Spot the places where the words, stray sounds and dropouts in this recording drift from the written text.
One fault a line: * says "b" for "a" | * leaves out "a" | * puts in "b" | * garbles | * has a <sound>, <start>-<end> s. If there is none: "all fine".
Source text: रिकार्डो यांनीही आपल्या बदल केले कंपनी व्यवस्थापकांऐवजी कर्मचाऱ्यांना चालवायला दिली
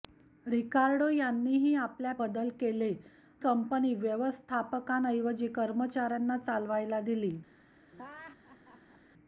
* has a laugh, 7.9-9.0 s